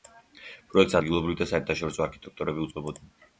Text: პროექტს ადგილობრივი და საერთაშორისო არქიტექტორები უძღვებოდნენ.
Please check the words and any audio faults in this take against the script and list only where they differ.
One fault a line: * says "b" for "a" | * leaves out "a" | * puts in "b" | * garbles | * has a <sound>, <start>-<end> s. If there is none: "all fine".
all fine